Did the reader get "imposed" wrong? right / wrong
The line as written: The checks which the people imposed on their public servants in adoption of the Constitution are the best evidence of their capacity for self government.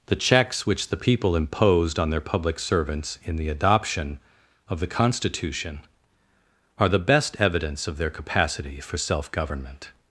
right